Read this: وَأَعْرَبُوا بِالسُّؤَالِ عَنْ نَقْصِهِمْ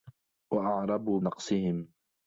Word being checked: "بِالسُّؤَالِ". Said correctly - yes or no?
no